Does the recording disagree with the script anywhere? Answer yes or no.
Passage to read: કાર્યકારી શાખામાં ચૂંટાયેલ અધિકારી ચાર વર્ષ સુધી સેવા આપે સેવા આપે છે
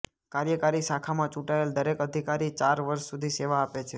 yes